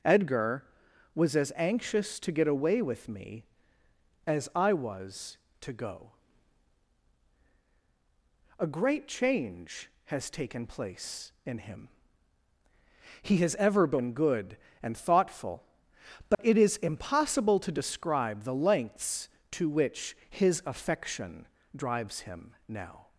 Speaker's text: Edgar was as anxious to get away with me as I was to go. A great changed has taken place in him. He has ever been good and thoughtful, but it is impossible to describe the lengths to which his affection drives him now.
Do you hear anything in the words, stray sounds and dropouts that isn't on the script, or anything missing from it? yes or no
yes